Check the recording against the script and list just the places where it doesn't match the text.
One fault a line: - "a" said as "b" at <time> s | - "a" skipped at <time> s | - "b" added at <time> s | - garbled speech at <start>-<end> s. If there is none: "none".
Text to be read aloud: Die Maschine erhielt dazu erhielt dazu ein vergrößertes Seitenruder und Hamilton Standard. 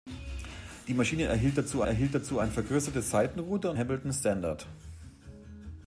none